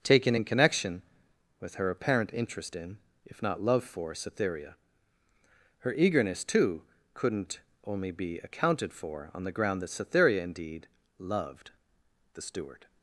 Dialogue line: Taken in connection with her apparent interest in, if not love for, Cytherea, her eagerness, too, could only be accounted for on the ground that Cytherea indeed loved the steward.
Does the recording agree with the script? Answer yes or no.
no